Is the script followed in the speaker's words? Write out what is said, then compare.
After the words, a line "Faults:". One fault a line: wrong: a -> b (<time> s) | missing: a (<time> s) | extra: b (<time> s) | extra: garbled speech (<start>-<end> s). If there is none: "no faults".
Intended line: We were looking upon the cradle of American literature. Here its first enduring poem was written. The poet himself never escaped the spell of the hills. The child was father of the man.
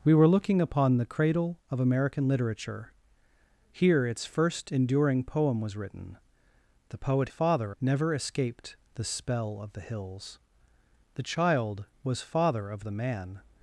We were looking upon the cradle of American literature. Here its first enduring poem was written. The poet father never escaped the spell of the hills. The child was father of the man.
Faults:
wrong: himself -> father (7.3 s)